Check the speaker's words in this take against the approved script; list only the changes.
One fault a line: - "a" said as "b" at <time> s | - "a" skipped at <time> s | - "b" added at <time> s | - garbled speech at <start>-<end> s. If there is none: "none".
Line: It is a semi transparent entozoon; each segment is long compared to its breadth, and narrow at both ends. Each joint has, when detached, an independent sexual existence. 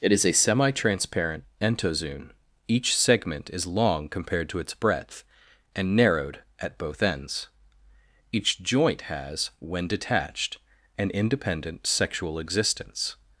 - "narrow" said as "narrowed" at 6.0 s